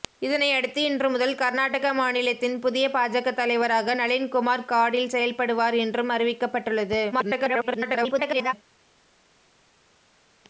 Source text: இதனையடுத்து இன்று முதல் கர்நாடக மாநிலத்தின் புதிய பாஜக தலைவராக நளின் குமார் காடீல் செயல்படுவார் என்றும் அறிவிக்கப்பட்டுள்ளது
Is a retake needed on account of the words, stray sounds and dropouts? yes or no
yes